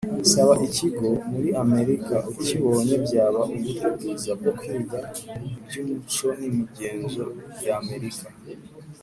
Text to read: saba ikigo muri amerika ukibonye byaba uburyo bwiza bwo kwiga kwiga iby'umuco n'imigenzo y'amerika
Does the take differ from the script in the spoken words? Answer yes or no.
yes